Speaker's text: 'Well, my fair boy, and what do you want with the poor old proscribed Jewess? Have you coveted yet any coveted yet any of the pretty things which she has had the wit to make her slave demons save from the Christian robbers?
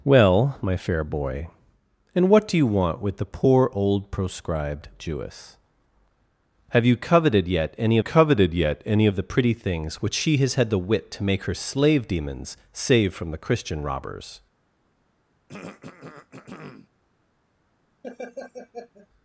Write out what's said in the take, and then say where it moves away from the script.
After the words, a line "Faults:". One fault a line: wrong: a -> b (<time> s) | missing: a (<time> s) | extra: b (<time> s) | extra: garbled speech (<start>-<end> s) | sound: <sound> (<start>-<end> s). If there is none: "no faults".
'Well, my fair boy, and what do you want with the poor old proscribed Jewess? Have you coveted yet any coveted yet any of the pretty things which she has had the wit to make her slave demons save from the Christian robbers?
Faults:
sound: throat clearing (15.5-16.9 s)
sound: laugh (18.0-19.1 s)